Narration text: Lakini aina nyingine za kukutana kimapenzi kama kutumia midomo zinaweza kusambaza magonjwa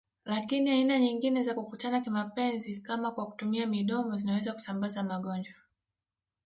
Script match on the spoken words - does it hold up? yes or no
no